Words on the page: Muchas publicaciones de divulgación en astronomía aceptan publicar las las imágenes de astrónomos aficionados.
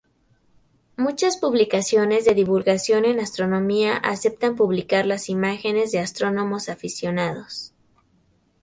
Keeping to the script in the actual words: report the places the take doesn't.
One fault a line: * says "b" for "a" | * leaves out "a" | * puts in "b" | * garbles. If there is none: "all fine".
* leaves out "las"